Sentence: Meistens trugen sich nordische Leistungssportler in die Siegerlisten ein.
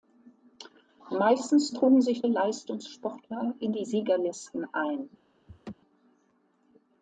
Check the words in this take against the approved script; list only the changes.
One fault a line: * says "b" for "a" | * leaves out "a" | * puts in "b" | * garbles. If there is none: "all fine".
* leaves out "nordische"